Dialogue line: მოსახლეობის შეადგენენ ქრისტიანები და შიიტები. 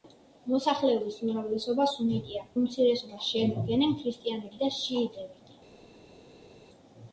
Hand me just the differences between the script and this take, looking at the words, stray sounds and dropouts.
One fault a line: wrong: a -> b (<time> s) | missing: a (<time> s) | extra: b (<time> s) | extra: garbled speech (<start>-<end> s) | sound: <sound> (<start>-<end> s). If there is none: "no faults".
extra: უმრავლესობა სუნიტია უმცირესობას (1.2 s)